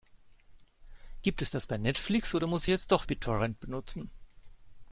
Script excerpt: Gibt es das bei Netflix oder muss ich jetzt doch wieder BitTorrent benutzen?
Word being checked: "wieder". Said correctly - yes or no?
no